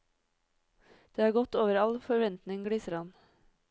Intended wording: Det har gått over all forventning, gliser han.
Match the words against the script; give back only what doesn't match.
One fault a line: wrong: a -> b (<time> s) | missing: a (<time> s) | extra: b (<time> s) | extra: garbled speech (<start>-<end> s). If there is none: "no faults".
no faults